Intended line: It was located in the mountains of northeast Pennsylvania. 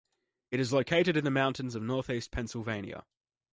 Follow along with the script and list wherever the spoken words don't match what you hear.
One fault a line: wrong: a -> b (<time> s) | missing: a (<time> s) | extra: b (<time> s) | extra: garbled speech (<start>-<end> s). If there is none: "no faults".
wrong: was -> is (0.6 s)